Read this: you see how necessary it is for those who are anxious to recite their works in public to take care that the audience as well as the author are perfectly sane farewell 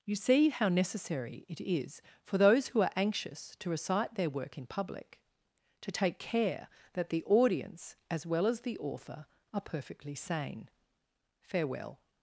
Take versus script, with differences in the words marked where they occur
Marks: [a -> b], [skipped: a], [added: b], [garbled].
you see how necessary it is for those who are anxious to recite their [works -> work] in public to take care that the audience as well as the author are perfectly sane farewell